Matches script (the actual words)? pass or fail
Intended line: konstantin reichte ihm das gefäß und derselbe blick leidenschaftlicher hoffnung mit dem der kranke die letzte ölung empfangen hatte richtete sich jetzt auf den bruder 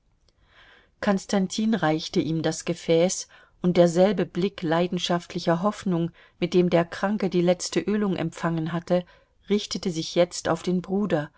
pass